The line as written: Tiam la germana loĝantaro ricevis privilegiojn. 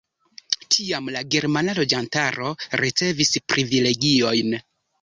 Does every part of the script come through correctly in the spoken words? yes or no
yes